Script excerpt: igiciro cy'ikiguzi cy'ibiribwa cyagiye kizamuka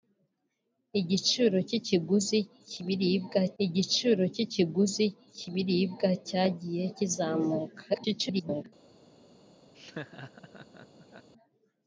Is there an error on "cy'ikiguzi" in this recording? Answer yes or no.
no